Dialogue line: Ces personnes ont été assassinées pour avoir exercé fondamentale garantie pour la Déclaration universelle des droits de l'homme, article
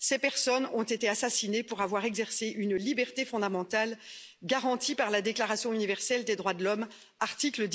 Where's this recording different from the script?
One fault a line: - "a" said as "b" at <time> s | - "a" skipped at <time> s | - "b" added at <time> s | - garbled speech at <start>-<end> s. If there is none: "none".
- "une liberté" added at 2.5 s
- "pour" said as "par" at 5.0 s